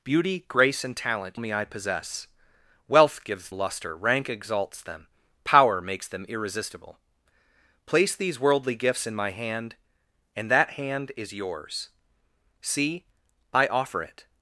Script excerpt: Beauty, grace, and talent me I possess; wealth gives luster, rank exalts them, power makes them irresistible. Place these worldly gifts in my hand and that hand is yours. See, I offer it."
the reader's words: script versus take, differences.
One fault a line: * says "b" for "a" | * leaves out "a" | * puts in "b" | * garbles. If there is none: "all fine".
all fine